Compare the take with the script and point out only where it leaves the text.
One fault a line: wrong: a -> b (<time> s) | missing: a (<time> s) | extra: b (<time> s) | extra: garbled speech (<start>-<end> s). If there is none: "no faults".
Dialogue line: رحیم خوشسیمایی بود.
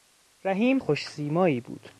no faults